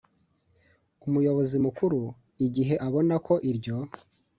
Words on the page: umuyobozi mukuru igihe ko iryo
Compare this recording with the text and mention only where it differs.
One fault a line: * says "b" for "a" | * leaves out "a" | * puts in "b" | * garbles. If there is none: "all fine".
* puts in "abona"